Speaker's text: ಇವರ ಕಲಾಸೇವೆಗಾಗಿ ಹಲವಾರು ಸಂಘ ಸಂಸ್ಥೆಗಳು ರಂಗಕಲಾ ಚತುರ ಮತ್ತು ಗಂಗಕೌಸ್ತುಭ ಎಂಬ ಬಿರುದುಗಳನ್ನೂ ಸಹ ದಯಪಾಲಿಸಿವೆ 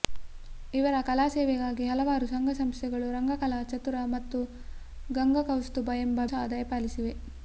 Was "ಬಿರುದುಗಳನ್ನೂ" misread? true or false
true